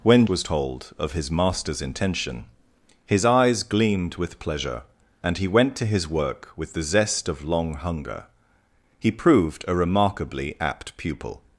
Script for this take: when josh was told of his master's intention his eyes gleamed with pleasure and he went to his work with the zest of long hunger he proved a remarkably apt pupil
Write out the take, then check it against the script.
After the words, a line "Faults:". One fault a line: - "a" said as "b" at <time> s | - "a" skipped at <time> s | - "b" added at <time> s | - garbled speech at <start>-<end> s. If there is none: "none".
when was told of his master's intention his eyes gleamed with pleasure and he went to his work with the zest of long hunger he proved a remarkably apt pupil
Faults:
- "josh" skipped at 0.2 s